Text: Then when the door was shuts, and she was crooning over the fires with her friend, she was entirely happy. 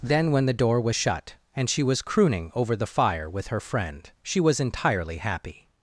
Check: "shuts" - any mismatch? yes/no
yes